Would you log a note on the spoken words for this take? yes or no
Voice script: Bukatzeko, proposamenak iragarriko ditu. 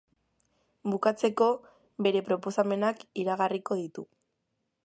yes